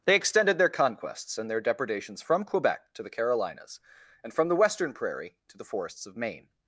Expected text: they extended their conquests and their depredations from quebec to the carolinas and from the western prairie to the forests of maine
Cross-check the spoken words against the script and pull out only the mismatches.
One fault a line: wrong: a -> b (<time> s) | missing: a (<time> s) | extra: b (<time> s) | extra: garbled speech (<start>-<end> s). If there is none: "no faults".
no faults